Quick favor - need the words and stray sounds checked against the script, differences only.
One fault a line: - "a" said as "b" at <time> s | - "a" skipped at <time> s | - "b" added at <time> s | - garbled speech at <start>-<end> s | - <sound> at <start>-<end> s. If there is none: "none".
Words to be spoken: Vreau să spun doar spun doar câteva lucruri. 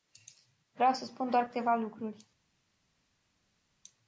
- "spun doar" skipped at 1.5 s